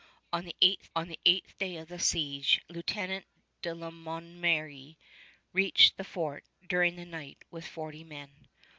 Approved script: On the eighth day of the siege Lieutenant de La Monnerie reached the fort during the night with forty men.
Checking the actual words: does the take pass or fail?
fail